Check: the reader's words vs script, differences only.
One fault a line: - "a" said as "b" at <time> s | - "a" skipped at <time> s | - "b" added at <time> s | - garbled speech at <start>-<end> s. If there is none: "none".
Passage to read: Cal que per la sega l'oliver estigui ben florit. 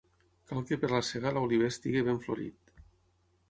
none